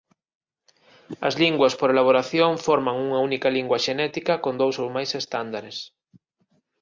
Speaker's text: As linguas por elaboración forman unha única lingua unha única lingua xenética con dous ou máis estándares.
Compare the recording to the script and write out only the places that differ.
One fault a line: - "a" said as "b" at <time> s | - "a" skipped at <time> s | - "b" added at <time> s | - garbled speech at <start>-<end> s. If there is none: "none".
- "unha única lingua" skipped at 3.8 s